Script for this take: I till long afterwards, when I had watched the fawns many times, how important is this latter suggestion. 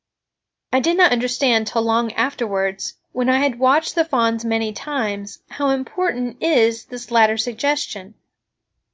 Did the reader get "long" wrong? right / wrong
right